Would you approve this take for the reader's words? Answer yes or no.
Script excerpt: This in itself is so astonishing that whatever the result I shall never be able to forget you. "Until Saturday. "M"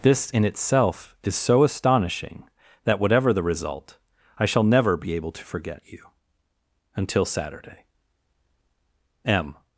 yes